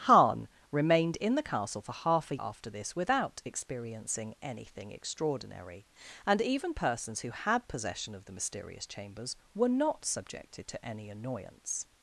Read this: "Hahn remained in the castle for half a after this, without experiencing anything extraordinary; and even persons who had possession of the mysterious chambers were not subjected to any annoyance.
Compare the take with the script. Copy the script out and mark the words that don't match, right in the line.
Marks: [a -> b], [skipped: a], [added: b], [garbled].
"Hahn remained in the castle for half a after this, without experiencing anything extraordinary; and even persons who had possession of the mysterious chambers were not subjected to any annoyance.